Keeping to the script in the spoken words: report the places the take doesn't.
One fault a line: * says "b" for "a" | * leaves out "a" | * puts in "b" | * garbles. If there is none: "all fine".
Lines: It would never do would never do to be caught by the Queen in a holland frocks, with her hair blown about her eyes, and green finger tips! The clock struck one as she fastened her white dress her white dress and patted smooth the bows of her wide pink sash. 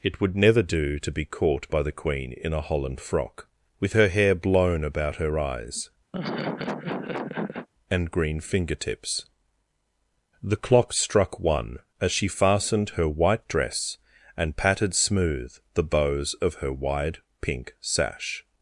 * leaves out "would never do"
* says "frock" for "frocks"
* leaves out "her white dress"